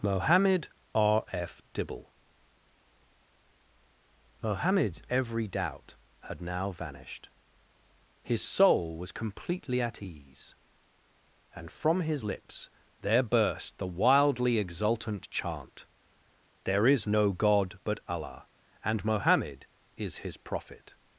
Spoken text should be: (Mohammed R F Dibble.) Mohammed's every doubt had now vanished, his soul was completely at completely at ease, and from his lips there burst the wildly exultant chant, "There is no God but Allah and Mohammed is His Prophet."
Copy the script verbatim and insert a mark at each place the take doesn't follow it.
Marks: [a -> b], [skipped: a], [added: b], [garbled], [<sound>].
(Mohammed R F Dibble.) Mohammed's every doubt had now vanished, his soul was completely at [skipped: completely at] ease, and from his lips there burst the wildly exultant chant, "There is no God but Allah and Mohammed is His Prophet."